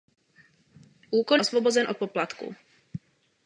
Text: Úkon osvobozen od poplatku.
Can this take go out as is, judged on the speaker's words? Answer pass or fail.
pass